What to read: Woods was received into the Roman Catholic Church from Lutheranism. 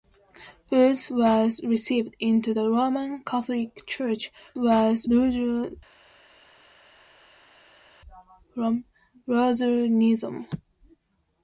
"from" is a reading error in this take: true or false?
true